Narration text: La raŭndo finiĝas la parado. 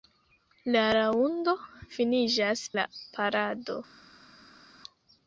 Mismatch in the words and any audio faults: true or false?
false